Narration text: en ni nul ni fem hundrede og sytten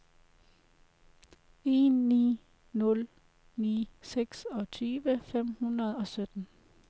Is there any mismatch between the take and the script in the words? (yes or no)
yes